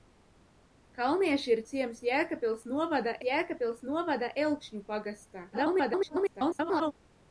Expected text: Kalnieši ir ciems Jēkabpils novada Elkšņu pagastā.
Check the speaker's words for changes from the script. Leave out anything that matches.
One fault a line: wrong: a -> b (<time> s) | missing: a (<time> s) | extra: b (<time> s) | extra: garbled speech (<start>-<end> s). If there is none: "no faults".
extra: Jēkabpils novada (3.2 s)
extra: garbled speech (5.5-6.9 s)